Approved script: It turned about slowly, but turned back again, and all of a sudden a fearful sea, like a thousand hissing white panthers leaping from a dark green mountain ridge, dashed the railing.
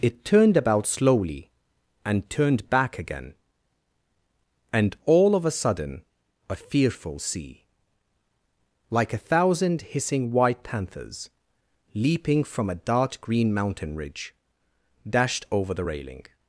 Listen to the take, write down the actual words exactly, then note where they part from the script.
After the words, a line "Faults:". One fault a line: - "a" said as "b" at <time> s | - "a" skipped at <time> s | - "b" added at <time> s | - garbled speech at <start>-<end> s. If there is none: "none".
It turned about slowly, and turned back again, and all of a sudden a fearful sea, like a thousand hissing white panthers leaping from a dark green mountain ridge, dashed over the railing.
Faults:
- "but" said as "and" at 2.0 s
- "over" added at 15.5 s